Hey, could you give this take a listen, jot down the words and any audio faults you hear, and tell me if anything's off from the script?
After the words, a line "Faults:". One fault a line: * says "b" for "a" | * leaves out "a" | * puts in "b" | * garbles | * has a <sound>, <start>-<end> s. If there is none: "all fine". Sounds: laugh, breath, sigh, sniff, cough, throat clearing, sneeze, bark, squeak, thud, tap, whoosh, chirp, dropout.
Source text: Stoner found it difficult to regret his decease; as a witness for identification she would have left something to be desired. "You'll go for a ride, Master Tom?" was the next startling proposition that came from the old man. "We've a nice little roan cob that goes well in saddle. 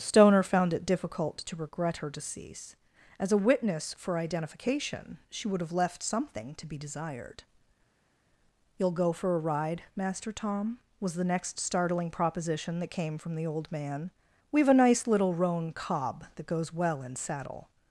Stoner found it difficult to regret her decease; as a witness for identification she would have left something to be desired. "You'll go for a ride, Master Tom?" was the next startling proposition that came from the old man. "We've a nice little roan cob that goes well in saddle.
Faults:
* says "her" for "his"